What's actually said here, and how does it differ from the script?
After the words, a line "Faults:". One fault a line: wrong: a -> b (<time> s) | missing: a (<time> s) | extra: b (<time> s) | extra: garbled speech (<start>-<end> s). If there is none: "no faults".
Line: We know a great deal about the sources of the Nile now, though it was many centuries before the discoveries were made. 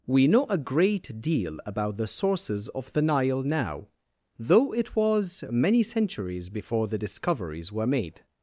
We know a great deal about the sources of the Nile now, though it was many centuries before the discoveries were made.
Faults:
no faults